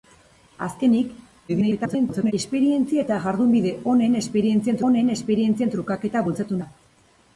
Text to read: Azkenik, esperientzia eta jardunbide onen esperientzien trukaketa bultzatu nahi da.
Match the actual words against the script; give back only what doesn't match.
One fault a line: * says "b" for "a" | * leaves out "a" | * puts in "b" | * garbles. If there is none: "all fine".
* garbles
* puts in "onen esperientzien"
* leaves out "nahi"